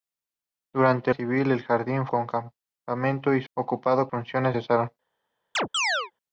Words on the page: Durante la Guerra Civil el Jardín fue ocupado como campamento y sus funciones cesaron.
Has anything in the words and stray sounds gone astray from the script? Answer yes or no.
yes